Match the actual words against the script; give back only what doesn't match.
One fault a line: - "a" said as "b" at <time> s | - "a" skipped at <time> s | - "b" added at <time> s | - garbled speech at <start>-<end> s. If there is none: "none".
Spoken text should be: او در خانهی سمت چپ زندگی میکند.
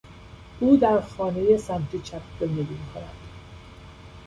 none